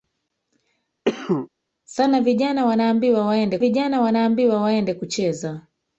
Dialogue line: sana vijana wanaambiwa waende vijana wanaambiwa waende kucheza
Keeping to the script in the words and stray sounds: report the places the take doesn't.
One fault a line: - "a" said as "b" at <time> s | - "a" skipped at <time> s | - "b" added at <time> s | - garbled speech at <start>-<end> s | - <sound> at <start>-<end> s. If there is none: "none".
- cough at 1.0-1.5 s